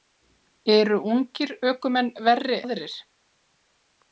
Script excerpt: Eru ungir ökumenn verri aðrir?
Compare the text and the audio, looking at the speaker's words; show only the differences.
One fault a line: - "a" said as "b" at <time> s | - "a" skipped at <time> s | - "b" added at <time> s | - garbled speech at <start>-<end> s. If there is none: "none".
none